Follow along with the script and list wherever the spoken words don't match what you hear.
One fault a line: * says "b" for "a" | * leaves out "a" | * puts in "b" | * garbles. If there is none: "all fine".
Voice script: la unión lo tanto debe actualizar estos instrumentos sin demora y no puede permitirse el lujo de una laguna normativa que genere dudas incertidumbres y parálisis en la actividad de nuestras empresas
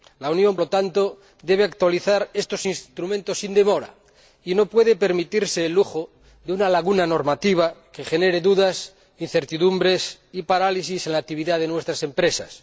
all fine